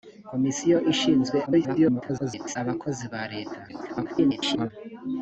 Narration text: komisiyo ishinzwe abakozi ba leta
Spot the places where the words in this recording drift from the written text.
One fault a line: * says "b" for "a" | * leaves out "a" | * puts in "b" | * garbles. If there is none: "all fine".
* garbles
* garbles